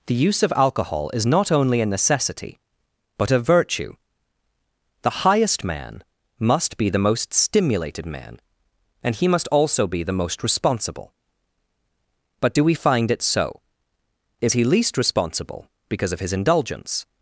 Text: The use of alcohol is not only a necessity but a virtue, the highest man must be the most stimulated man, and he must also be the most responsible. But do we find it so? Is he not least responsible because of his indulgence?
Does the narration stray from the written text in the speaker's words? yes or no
yes